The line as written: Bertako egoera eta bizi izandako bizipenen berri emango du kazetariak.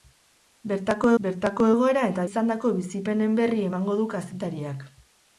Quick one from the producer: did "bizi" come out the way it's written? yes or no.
no